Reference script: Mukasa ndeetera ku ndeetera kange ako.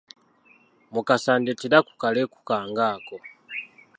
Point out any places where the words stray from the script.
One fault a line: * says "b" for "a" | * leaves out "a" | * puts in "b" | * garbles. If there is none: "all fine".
* says "kaleku" for "ndeetera"